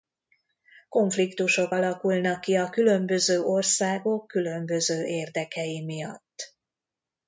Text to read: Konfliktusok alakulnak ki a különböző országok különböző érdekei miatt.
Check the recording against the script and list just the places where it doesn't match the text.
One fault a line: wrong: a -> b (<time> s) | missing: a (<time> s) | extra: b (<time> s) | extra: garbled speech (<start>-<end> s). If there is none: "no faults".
no faults